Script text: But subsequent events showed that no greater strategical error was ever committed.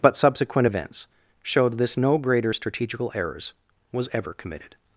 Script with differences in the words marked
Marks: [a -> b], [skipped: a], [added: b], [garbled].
But subsequent events showed [that -> this] no greater strategical [error -> errors] was ever committed.